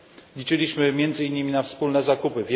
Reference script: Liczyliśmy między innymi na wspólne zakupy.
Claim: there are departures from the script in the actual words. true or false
false